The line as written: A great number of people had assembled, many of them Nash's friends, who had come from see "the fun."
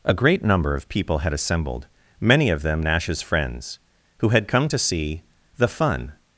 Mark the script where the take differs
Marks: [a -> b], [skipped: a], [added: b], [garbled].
A great number of people had assembled, many of them Nash's friends, who had come [from -> to] see "the fun."